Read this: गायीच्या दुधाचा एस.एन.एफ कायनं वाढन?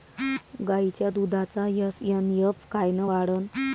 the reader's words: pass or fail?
pass